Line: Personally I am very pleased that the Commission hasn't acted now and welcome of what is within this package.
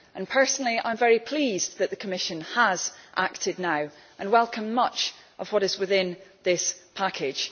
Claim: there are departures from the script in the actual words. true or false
true